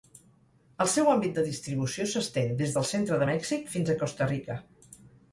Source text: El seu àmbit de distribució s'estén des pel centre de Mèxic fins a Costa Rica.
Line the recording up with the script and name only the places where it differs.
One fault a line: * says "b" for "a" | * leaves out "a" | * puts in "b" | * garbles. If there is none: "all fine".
* says "del" for "pel"